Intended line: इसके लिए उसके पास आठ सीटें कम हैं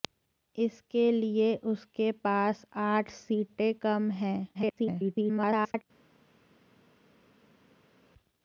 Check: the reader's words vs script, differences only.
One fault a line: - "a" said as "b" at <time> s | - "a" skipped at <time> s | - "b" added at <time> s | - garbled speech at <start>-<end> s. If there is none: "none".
- garbled speech at 4.5-5.8 s